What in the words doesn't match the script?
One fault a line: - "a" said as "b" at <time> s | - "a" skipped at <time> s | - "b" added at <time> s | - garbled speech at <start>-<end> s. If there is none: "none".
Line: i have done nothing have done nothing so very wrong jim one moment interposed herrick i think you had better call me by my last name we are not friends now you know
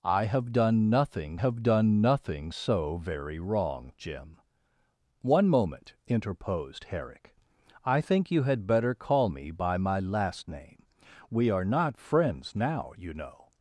none